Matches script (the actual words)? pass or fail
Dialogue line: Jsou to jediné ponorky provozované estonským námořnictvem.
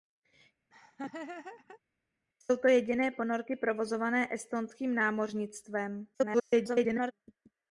fail